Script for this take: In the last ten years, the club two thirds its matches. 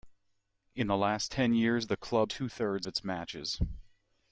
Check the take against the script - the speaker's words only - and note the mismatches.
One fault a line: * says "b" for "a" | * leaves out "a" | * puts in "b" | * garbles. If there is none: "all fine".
all fine